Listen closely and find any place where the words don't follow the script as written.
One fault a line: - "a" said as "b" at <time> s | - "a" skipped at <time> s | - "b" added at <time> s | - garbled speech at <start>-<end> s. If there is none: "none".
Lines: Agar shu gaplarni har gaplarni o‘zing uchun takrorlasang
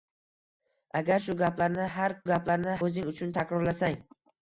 none